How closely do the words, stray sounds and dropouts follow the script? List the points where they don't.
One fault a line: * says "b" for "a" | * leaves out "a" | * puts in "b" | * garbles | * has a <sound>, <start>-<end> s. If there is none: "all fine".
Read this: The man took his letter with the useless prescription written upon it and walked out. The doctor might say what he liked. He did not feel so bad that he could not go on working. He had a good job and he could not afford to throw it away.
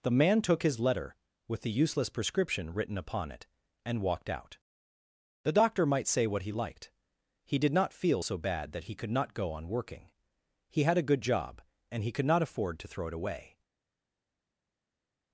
all fine